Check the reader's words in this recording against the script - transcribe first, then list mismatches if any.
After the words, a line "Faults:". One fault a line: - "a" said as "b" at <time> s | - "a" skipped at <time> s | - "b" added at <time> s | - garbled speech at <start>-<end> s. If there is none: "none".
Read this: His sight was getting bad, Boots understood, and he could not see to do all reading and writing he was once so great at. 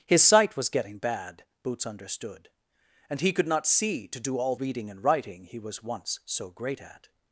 His sight was getting bad, Boots understood, and he could not see to do all reading and writing he was once so great at.
Faults:
none